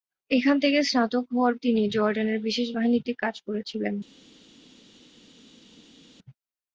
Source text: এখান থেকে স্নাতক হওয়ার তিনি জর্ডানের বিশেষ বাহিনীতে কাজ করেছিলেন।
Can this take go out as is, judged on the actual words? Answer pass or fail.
pass